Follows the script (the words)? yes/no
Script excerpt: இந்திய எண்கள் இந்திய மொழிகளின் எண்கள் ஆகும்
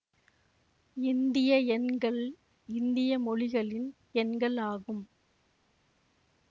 yes